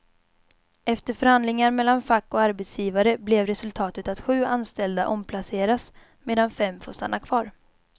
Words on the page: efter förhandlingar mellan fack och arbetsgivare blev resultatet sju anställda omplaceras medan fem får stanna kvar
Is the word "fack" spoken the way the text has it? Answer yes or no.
yes